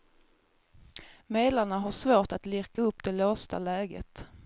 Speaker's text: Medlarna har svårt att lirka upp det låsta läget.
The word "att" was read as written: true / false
true